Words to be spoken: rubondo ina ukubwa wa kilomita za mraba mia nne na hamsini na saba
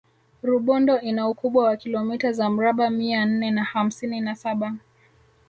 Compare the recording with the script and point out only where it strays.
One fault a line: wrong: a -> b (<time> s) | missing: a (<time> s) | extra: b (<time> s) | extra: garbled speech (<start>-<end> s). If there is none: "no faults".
no faults